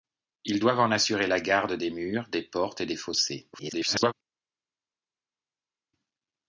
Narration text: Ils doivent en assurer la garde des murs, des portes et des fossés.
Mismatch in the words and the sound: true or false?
true